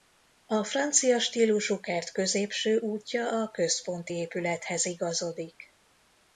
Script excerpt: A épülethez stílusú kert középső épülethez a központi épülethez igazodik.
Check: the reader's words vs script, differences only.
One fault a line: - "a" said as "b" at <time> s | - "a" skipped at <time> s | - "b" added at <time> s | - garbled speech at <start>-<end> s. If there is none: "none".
- "épülethez" said as "francia" at 0.6 s
- "épülethez" said as "útja" at 2.8 s